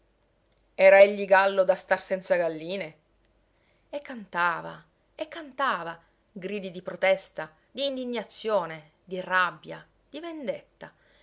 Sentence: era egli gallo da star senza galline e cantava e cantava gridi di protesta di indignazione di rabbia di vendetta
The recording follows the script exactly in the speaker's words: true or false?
true